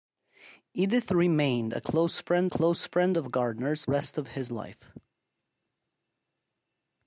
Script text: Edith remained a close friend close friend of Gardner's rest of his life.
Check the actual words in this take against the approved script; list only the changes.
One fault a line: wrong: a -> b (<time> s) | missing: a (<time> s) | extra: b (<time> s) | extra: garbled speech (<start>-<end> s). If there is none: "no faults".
no faults